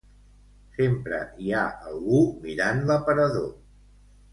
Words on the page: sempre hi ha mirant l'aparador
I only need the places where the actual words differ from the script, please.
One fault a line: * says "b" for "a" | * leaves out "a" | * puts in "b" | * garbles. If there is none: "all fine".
* puts in "algú"